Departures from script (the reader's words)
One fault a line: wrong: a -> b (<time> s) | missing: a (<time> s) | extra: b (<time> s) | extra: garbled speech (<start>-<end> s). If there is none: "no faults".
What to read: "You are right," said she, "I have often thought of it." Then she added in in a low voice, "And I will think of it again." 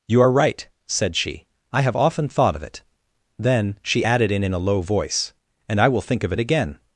no faults